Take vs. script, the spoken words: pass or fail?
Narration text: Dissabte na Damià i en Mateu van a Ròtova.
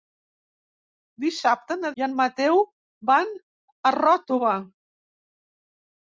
fail